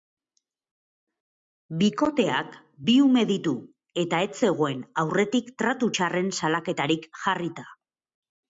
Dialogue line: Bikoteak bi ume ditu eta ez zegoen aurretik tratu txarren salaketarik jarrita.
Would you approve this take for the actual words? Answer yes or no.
yes